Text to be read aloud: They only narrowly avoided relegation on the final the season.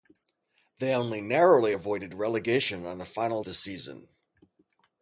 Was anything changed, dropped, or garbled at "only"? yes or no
no